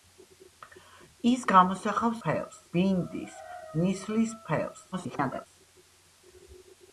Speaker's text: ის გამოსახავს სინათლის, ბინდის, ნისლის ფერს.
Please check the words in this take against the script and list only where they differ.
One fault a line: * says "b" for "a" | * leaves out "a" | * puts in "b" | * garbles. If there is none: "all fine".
* says "ფერს" for "სინათლის"
* garbles